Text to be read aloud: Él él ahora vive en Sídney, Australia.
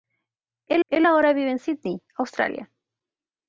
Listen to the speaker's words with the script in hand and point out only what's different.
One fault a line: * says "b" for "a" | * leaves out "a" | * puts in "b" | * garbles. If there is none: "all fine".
all fine